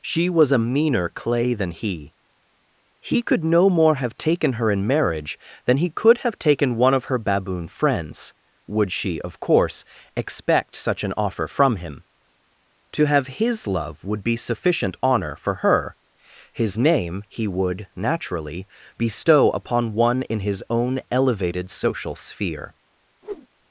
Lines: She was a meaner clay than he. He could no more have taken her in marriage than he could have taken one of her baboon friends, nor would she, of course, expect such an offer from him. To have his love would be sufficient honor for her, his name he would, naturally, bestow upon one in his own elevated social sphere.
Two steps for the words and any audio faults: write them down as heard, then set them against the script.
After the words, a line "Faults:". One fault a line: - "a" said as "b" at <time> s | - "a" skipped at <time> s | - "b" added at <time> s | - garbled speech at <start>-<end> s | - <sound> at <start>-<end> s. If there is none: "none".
She was a meaner clay than he. He could no more have taken her in marriage than he could have taken one of her baboon friends, would she, of course, expect such an offer from him. To have his love would be sufficient honor for her, his name he would, naturally, bestow upon one in his own elevated social sphere.
Faults:
- "nor" skipped at 8.3 s
- whoosh at 23.2-23.5 s